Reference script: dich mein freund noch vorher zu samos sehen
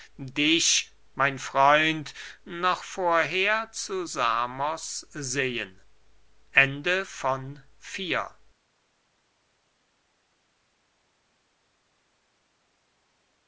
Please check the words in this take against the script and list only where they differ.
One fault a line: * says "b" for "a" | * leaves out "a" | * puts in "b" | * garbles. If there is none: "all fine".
all fine